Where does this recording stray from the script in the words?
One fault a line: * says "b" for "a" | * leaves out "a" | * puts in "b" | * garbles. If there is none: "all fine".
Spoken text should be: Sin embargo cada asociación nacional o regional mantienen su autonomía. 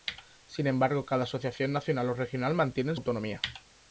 * leaves out "su"